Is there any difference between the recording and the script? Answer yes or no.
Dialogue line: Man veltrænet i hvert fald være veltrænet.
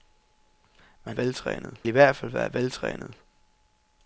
no